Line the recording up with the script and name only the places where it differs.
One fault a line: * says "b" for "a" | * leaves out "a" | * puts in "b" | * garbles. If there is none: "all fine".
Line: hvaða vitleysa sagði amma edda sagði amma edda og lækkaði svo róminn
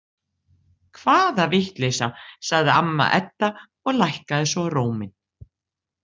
* leaves out "sagði amma edda"